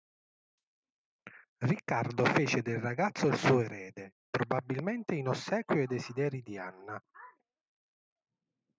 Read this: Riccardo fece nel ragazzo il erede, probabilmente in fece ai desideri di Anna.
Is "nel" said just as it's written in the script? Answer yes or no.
no